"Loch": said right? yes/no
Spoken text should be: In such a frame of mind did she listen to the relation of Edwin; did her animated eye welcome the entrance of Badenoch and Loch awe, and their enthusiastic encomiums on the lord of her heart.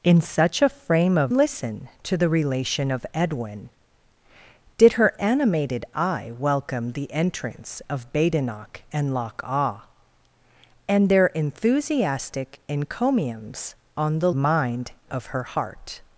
yes